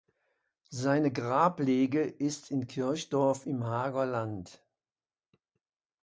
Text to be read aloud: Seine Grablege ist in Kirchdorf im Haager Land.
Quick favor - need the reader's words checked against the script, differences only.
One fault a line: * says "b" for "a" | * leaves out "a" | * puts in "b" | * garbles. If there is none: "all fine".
all fine